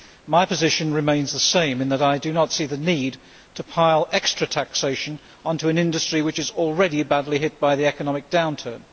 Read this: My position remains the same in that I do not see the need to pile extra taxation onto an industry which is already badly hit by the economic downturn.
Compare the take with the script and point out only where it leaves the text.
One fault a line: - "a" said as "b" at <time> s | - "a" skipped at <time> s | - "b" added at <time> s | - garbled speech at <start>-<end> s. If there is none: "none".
none